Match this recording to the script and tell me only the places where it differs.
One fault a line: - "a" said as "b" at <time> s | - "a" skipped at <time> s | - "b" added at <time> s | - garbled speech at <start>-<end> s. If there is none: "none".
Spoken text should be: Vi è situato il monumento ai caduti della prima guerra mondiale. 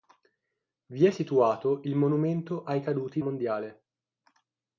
- "della prima guerra" skipped at 3.2 s